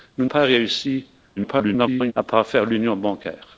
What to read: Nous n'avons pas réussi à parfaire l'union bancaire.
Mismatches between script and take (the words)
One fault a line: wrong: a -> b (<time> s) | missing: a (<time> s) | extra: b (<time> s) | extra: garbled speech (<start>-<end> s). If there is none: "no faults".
missing: n'avons (0.2 s)
extra: garbled speech (1.4-2.1 s)